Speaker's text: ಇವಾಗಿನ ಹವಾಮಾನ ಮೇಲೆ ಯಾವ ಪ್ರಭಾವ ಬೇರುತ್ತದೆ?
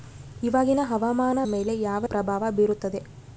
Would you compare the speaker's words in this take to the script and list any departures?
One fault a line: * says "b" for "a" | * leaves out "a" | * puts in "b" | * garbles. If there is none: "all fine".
all fine